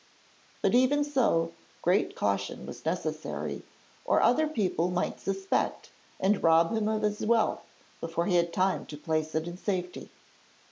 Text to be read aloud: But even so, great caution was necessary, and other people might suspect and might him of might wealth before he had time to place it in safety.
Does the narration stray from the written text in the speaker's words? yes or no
yes